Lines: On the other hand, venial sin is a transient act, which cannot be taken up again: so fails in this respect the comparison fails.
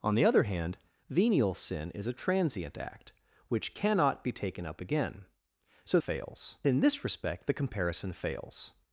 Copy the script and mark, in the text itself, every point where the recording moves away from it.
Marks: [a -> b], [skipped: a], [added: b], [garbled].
On the other hand, venial sin is a transient act, which cannot be taken up again: so fails in this respect the comparison fails.